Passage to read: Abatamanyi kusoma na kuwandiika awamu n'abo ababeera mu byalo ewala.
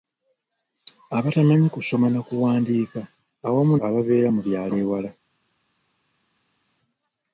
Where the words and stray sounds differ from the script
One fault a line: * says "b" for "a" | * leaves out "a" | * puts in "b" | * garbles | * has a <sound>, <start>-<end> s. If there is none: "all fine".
* leaves out "n'abo"